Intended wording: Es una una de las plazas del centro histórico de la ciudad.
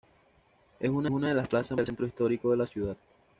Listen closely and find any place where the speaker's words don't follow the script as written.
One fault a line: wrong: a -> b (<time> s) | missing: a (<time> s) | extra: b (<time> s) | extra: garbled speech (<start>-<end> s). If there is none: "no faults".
no faults